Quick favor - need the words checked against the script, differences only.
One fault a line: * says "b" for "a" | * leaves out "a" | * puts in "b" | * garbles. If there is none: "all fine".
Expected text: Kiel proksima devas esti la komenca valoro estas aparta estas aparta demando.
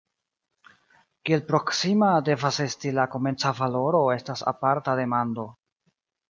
* leaves out "estas aparta"